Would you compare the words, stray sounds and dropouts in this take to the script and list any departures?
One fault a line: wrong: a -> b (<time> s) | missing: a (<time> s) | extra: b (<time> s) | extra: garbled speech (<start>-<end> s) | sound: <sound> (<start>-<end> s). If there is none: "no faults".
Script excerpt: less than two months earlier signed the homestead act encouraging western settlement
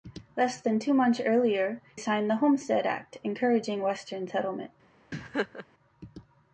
sound: laugh (5.1-5.7 s)